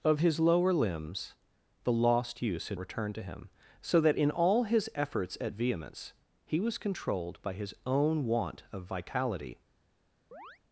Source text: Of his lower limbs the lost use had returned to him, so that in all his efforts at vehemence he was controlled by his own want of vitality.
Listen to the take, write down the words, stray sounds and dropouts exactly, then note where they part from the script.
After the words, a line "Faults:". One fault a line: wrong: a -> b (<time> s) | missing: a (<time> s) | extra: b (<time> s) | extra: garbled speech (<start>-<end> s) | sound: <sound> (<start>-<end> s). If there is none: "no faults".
Of his lower limbs the lost use had returned to him, so that in all his efforts at vehemence he was controlled by his own want of vitality.
Faults:
sound: chirp (10.3-10.6 s)